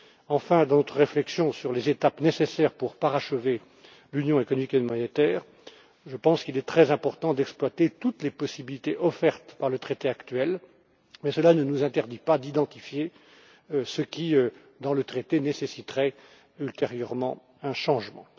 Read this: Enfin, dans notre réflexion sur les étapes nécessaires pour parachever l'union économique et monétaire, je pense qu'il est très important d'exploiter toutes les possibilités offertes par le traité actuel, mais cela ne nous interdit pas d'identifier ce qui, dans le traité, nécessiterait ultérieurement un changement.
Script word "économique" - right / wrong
right